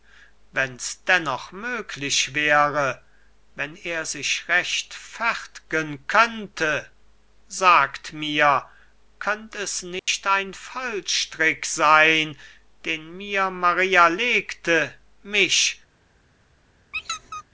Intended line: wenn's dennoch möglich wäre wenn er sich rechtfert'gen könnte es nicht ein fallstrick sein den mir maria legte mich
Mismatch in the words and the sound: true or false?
true